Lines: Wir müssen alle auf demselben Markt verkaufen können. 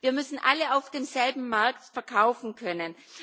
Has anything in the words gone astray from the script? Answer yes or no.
no